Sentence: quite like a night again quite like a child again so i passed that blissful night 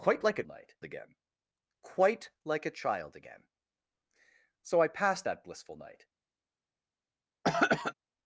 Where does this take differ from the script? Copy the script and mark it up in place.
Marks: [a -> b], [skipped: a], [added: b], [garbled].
quite like a night again quite like a child again so i passed that blissful night